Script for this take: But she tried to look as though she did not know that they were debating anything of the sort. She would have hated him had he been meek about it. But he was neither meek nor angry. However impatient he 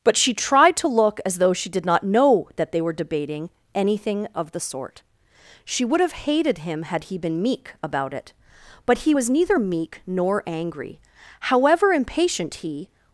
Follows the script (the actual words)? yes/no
yes